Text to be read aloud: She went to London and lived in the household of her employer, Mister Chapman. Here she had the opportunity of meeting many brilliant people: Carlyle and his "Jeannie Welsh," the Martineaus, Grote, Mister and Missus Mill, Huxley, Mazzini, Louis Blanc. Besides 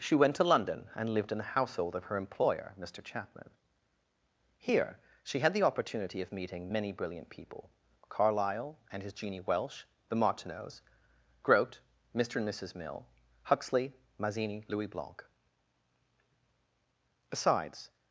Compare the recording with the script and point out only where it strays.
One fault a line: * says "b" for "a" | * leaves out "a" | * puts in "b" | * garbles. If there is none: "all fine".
all fine